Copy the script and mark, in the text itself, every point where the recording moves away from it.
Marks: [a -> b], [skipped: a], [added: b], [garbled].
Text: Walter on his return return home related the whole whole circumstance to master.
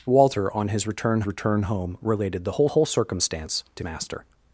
Walter on his return return home related the whole whole circumstance to master.